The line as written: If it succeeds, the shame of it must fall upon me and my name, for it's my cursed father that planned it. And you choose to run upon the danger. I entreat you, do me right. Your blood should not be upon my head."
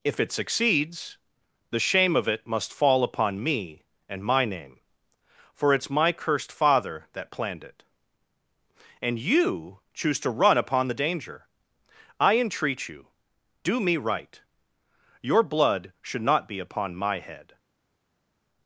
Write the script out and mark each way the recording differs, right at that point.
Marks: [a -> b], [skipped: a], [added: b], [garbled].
If it succeeds, the shame of it must fall upon me and my name, for it's my cursed father that planned it. And you choose to run upon the danger. I entreat you, do me right. Your blood should not be upon my head."